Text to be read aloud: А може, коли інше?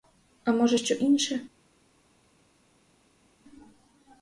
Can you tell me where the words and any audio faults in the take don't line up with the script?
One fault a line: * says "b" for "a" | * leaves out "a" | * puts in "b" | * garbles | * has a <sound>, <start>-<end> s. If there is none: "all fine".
* says "що" for "коли"